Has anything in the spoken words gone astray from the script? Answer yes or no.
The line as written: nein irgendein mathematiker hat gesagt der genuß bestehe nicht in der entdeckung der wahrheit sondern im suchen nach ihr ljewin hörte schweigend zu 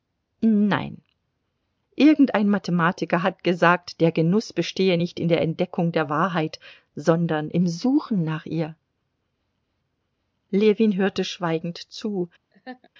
no